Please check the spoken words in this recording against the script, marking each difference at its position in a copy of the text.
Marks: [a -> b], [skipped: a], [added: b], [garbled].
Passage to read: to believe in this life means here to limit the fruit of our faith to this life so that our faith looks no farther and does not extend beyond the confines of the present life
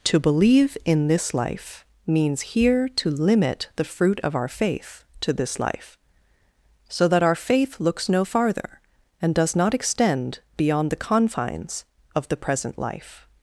to believe in this life means here to limit the fruit of our faith to this life so that our faith looks no farther and does not extend beyond the confines of the present life